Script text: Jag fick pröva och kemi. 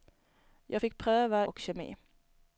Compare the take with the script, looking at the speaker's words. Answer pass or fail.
pass